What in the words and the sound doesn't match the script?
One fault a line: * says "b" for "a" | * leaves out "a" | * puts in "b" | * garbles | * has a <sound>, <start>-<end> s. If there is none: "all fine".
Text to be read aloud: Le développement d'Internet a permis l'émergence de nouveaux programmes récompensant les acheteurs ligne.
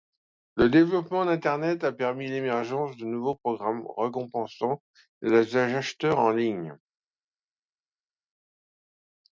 * puts in "en"